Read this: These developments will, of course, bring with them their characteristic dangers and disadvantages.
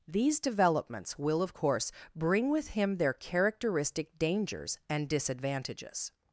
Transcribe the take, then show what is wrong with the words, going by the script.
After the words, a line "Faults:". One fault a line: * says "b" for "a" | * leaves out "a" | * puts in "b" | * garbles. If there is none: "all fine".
These developments will, of course, bring with him their characteristic dangers and disadvantages.
Faults:
* says "him" for "them"